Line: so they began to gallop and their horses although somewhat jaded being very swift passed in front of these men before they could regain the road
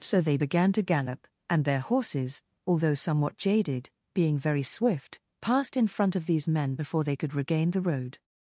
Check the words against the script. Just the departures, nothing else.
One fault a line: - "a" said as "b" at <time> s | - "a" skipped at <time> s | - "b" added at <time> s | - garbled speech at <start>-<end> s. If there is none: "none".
none